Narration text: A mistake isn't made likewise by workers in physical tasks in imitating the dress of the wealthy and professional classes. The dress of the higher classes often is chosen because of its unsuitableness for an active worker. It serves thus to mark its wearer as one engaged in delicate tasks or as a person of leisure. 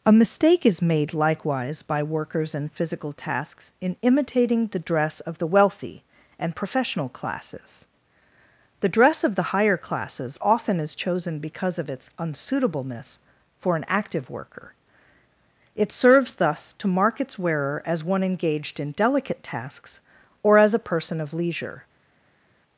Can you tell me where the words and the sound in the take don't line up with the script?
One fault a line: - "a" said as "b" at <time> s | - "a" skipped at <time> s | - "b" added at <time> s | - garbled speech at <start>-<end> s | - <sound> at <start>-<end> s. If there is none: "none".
- "isn't" said as "is" at 0.7 s